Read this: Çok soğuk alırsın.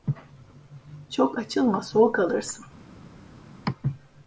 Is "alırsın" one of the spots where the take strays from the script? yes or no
no